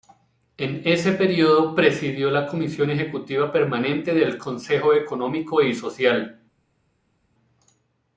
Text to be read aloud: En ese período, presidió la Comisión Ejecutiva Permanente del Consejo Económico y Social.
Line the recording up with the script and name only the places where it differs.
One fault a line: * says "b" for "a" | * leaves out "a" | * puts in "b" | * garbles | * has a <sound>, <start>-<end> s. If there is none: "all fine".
all fine